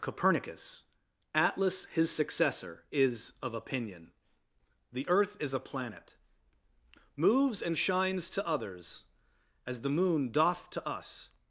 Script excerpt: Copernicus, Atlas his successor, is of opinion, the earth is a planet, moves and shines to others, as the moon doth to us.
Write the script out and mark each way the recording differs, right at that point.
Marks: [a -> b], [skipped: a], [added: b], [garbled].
Copernicus, Atlas his successor, is of opinion, the earth is a planet, moves and shines to others, as the moon doth to us.